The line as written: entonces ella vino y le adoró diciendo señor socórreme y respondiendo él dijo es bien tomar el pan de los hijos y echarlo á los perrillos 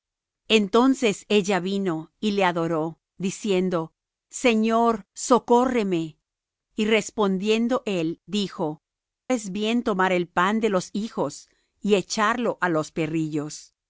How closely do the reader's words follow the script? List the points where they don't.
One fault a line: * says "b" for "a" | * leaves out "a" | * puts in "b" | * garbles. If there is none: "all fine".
all fine